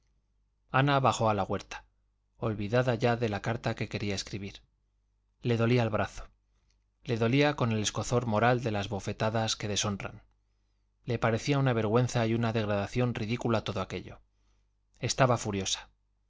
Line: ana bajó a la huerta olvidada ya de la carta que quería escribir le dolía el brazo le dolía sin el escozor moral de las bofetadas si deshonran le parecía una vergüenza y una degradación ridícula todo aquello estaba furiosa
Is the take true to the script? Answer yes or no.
no